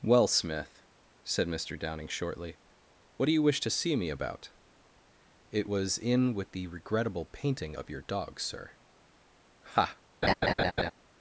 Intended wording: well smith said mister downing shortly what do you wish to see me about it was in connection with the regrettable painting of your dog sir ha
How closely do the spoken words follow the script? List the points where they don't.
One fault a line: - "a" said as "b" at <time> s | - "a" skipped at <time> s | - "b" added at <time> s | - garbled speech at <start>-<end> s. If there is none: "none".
- "connection" skipped at 6.3 s